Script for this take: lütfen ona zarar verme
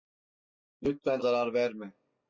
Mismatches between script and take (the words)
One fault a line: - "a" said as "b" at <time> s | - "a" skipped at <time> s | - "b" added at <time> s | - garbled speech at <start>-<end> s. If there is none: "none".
- "ona" skipped at 1.2 s